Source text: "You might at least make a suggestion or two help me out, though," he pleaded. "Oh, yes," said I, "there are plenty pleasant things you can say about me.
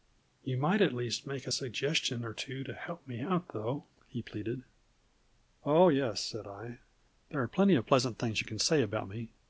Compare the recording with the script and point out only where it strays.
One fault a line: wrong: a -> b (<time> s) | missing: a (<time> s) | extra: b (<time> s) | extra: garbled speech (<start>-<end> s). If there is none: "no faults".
extra: to (2.6 s)
extra: of (7.7 s)